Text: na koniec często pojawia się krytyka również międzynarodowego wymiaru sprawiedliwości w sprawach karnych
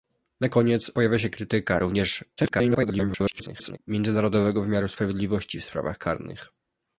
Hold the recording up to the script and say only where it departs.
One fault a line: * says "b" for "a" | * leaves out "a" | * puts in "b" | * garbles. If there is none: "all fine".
* leaves out "często"
* garbles